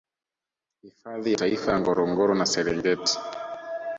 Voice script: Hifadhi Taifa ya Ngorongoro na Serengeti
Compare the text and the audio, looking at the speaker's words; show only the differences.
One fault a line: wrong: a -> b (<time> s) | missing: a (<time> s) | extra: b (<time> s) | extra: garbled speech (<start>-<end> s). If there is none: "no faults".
no faults